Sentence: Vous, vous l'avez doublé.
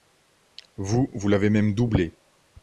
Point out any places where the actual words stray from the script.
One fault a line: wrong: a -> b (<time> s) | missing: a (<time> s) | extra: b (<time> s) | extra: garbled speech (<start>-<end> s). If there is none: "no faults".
extra: même (1.5 s)